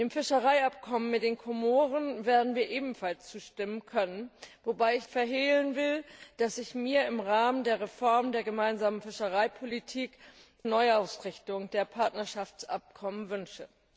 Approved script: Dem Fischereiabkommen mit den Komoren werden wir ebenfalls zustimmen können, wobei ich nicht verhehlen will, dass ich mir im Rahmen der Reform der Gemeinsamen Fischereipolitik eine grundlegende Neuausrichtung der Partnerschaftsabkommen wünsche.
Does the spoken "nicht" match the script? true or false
false